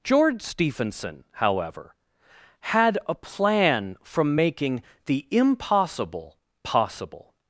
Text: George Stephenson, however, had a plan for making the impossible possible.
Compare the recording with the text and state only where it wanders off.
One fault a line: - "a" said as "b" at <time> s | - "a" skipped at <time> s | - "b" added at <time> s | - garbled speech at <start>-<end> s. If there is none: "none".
- "for" said as "from" at 4.0 s